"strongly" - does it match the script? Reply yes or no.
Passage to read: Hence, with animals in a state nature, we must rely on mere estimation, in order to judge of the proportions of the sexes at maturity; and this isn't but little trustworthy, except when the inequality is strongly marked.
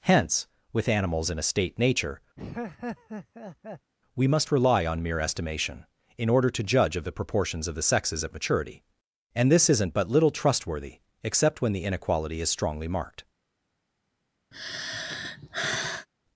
yes